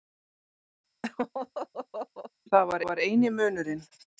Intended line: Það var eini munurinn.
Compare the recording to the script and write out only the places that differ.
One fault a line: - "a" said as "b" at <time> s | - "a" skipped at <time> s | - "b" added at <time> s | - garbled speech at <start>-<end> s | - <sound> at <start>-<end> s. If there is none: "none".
- laugh at 1.0-2.3 s
- "var" added at 2.9 s